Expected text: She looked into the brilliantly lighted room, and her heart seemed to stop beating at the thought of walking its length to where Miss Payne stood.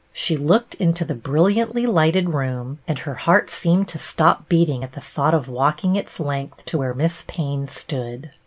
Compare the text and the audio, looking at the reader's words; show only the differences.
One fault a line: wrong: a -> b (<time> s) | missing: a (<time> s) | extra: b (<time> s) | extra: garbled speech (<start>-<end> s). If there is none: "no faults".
no faults